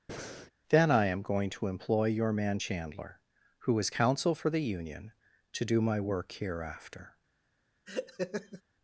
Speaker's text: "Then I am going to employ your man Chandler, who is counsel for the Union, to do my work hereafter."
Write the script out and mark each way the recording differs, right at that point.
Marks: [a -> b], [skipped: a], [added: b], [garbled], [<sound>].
[breath] "Then I am going to employ your man Chandler, who is counsel for the Union, to do my work hereafter." [laugh]